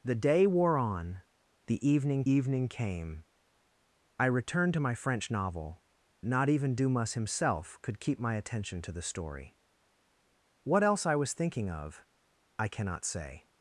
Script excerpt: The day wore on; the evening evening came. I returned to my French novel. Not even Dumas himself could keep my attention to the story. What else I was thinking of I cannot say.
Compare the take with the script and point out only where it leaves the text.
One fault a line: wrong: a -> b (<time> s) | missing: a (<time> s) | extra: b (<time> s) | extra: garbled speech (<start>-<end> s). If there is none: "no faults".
no faults